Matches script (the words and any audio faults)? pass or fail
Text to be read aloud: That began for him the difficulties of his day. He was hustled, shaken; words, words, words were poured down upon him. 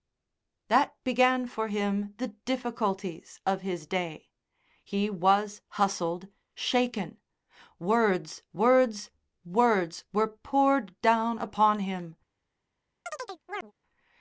fail